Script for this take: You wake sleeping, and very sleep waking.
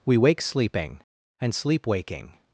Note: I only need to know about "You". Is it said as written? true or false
false